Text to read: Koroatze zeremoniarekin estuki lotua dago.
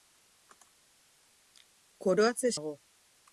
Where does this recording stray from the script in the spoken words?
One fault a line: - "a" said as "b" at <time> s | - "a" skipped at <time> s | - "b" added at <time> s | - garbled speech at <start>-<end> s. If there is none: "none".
- "zeremoniarekin estuki lotua" skipped at 2.5 s